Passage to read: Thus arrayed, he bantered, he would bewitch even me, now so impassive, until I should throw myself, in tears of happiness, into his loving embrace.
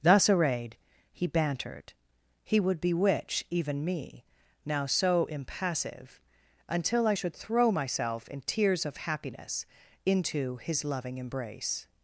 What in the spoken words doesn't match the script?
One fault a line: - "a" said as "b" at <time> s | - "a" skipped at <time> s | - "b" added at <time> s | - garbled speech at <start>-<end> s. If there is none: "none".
none